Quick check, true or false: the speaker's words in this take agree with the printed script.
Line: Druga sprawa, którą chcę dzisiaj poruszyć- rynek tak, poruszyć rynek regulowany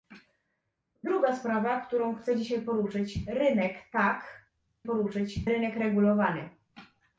true